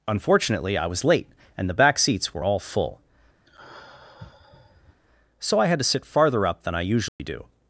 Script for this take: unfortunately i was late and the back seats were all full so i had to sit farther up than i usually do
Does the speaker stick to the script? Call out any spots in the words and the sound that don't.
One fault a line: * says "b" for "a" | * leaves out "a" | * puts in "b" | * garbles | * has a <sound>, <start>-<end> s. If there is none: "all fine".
* has a sigh, 3.5-5.0 s
* has a dropout, 7.1-7.2 s